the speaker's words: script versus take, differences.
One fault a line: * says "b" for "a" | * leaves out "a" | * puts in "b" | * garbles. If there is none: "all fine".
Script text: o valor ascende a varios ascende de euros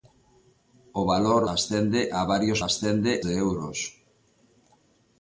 all fine